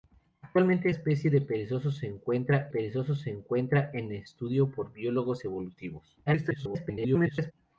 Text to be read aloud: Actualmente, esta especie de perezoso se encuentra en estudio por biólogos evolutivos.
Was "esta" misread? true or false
true